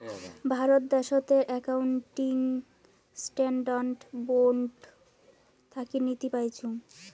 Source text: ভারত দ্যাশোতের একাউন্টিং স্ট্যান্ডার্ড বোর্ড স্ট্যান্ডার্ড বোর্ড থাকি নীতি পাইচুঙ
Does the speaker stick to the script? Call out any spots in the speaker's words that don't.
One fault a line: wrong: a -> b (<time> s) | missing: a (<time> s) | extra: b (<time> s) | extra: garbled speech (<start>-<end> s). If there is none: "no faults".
missing: স্ট্যান্ডার্ড বোর্ড (4.7 s)